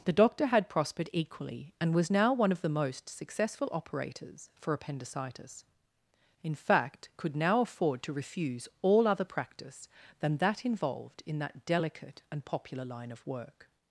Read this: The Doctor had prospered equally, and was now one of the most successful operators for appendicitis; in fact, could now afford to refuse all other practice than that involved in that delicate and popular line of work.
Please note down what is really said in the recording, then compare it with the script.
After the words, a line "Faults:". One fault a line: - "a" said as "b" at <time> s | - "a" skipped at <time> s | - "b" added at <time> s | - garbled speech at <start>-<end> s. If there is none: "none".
The Doctor had prospered equally, and was now one of the most successful operators for appendicitis; in fact, could now afford to refuse all other practice than that involved in that delicate and popular line of work.
Faults:
none